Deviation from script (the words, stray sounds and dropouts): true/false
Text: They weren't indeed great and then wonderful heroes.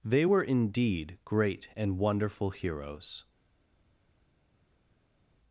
true